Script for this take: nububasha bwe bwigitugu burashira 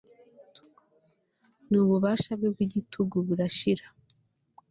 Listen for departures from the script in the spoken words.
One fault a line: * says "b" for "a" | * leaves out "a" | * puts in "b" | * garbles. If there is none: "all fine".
all fine